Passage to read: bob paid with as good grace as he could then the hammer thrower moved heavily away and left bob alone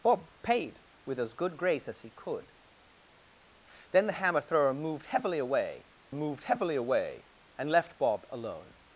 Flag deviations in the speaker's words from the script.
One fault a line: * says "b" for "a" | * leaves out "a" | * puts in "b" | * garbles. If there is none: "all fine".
* puts in "moved heavily away"